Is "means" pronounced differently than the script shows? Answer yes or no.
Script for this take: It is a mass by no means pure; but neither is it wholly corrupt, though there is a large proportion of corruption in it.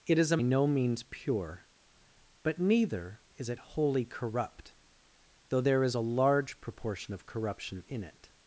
no